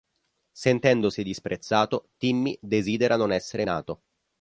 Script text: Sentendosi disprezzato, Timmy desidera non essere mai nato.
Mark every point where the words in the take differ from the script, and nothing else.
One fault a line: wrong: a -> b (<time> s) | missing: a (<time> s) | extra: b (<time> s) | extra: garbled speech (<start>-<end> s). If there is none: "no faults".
missing: mai (3.6 s)